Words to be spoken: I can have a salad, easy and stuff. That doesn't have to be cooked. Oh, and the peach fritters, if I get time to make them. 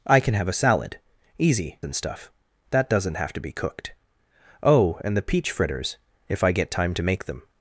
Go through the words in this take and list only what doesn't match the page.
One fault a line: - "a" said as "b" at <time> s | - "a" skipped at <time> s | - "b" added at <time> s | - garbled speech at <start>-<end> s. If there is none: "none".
none